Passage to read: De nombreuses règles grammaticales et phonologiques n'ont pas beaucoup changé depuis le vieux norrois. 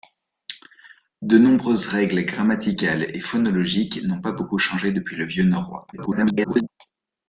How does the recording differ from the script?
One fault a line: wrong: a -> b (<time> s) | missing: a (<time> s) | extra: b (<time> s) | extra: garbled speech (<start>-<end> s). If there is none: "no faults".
extra: garbled speech (5.9-6.7 s)